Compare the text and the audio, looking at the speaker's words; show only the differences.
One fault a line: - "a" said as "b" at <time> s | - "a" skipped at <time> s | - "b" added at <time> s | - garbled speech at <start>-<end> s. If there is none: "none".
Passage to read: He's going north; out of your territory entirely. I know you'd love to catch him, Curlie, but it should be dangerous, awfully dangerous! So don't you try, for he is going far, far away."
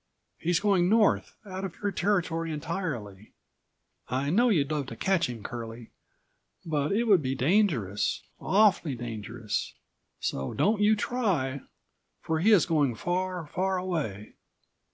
- "should" said as "would" at 7.0 s